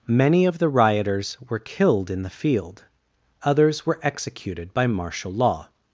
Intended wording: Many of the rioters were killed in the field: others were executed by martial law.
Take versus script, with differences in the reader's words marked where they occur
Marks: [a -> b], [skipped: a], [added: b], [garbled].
Many of the rioters were killed in the field: others were executed by martial law.